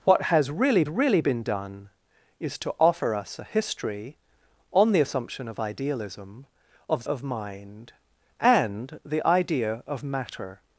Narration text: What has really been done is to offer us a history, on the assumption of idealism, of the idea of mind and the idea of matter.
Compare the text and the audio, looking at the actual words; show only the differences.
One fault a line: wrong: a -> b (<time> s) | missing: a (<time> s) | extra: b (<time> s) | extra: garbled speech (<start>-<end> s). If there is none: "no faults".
extra: really (0.9 s)
missing: the idea (7.0 s)